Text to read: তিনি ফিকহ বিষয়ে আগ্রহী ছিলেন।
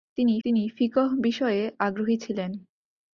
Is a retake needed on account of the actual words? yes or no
yes